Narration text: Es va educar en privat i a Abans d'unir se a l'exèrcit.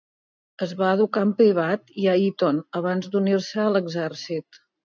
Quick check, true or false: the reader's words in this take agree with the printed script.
false